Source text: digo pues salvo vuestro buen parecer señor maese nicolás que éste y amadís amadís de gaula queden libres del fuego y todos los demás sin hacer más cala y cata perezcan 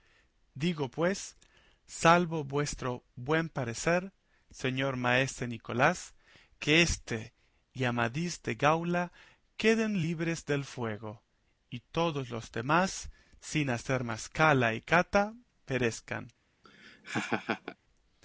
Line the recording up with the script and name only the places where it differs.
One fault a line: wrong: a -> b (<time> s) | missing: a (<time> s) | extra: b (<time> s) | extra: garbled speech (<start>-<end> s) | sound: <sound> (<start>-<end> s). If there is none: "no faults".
missing: amadís (8.4 s)
sound: laugh (16.6-17.8 s)